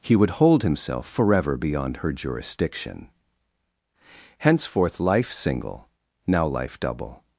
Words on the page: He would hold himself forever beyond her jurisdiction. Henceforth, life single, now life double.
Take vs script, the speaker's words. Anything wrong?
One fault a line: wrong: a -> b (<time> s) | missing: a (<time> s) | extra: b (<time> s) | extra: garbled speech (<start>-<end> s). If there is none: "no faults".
no faults